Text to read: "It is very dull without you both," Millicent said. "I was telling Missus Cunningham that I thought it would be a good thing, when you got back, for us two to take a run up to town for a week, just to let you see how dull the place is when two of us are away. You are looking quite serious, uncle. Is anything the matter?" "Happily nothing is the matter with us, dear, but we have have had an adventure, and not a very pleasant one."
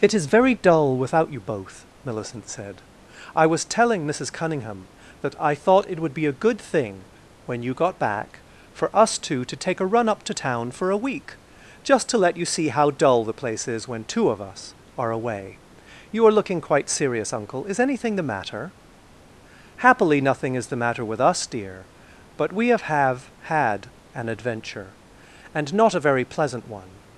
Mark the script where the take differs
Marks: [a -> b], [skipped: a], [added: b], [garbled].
"It is very dull without you both," Millicent said. "I was telling Missus Cunningham that I thought it would be a good thing, when you got back, for us two to take a run up to town for a week, just to let you see how dull the place is when two of us are away. You are looking quite serious, uncle. Is anything the matter?" "Happily nothing is the matter with us, dear, but we have have had an adventure, and not a very pleasant one."